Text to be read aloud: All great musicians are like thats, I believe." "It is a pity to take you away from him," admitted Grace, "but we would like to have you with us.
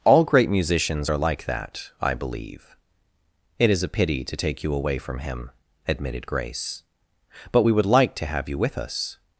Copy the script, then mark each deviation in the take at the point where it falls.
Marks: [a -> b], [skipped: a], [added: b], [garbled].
All great musicians are like [thats, -> that] I believe." "It is a pity to take you away from him," admitted Grace, "but we would like to have you with us.